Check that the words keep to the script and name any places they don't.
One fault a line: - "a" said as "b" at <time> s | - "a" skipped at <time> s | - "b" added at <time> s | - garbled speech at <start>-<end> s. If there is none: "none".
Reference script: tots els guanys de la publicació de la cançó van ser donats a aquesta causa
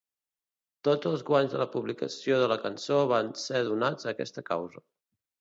none